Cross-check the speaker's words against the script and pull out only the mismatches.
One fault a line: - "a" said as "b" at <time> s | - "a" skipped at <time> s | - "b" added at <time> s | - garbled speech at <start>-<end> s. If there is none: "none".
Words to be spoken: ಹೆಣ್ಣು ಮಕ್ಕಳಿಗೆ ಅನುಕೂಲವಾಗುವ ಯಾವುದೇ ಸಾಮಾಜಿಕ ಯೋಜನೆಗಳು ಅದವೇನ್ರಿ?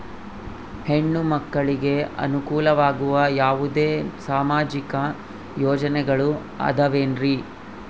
none